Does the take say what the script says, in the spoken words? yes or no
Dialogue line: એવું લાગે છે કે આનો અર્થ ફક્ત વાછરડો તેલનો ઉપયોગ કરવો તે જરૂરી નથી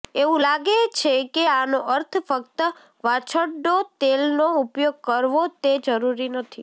yes